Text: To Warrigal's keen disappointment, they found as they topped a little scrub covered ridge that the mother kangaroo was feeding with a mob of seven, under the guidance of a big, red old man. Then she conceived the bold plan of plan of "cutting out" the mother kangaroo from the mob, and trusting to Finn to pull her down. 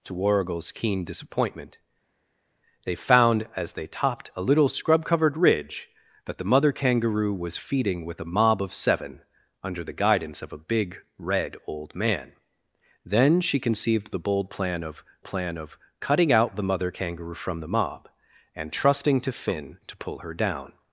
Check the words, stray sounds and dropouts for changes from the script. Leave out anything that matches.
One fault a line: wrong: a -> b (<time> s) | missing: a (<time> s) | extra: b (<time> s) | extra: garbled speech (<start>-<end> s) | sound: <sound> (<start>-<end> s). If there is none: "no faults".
no faults